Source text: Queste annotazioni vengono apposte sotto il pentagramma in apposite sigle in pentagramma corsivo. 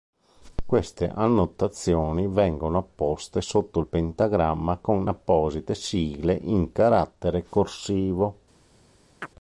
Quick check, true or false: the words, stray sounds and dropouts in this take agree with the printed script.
false